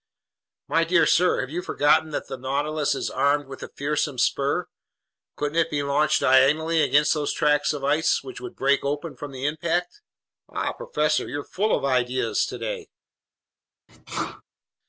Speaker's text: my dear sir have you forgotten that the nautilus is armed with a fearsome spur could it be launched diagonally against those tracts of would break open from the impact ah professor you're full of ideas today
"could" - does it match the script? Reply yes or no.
no